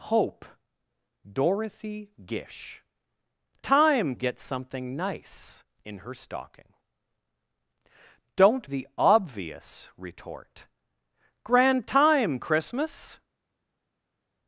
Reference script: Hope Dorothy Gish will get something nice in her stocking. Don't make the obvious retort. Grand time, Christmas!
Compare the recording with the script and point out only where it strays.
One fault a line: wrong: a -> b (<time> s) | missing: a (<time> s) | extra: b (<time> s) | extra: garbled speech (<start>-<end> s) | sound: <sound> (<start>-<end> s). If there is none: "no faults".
wrong: will -> time (3.6 s)
missing: make (8.7 s)